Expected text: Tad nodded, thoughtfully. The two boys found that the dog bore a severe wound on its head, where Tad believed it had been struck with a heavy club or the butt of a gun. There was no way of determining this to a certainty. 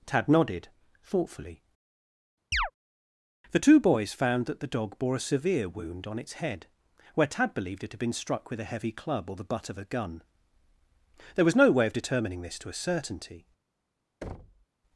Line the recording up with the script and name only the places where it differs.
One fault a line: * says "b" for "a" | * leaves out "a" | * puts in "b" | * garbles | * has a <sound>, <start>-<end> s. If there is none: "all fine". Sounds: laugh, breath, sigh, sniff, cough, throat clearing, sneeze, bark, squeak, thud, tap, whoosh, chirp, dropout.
* has a chirp, 2.5-2.7 s
* has a thud, 14.2-14.7 s